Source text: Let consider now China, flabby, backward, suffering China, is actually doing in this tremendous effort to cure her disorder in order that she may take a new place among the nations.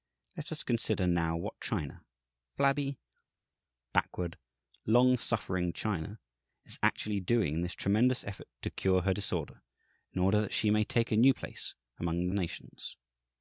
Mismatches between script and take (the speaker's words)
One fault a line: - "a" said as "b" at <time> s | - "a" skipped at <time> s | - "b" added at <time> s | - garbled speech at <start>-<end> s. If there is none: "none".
- "us" added at 0.5 s
- "what" added at 1.4 s
- "long" added at 4.9 s